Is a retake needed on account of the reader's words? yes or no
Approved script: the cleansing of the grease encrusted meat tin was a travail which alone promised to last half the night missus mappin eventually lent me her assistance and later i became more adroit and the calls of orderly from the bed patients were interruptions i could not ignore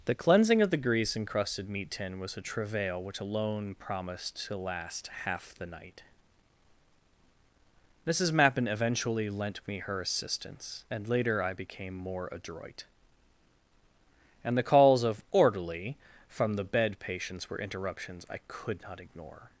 no